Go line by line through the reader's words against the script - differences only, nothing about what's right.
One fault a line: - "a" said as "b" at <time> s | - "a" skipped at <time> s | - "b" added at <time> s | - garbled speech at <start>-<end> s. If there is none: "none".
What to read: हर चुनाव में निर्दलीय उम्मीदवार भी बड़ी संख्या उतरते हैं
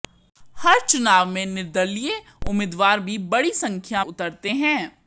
none